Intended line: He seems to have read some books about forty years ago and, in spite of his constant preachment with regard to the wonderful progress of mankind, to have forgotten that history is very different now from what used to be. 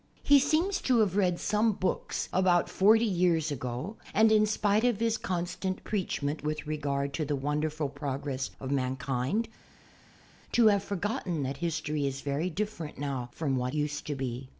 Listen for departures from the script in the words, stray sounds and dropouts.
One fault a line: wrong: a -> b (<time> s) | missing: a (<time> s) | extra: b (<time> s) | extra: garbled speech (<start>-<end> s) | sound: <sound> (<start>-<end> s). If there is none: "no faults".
no faults